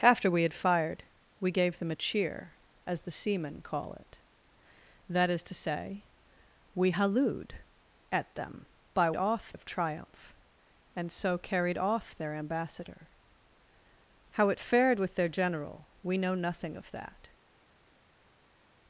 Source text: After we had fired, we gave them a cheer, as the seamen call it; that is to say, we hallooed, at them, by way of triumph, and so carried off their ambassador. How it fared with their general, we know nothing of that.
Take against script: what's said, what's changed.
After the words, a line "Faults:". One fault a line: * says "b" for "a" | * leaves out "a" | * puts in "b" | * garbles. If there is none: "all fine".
After we had fired, we gave them a cheer, as the seamen call it; that is to say, we hallooed, at them, by off of triumph, and so carried off their ambassador. How it fared with their general, we know nothing of that.
Faults:
* says "off" for "way"